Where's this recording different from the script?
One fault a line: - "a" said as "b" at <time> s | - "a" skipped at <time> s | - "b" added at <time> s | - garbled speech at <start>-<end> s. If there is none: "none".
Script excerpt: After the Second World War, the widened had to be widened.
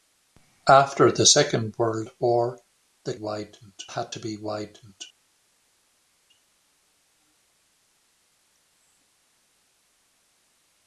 none